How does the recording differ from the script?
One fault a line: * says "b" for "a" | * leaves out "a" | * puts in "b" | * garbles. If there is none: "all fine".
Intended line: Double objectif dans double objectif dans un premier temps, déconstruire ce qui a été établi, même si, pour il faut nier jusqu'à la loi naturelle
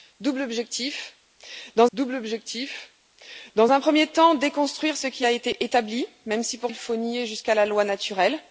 all fine